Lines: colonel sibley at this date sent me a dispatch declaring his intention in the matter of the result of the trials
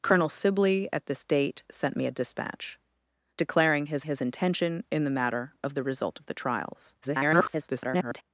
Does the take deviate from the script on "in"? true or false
false